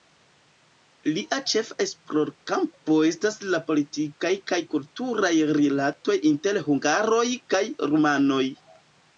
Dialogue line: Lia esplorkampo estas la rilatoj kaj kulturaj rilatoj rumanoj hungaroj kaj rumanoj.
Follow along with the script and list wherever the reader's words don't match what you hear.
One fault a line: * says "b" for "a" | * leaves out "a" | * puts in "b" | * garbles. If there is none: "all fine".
* puts in "ĉefa"
* says "politikaj" for "rilatoj"
* says "inter" for "rumanoj"